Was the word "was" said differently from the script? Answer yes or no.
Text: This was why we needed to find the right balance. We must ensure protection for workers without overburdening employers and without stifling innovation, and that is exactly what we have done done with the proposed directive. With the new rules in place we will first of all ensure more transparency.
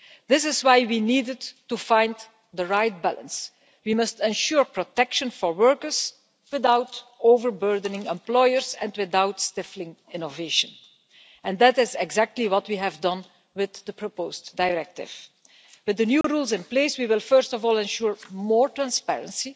yes